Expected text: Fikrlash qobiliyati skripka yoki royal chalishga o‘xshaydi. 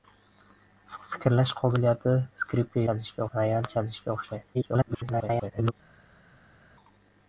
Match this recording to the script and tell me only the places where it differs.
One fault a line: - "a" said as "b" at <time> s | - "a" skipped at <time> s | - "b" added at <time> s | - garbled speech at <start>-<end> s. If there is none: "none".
- "yoki" said as "chalishga" at 2.9 s
- garbled speech at 4.5-5.7 s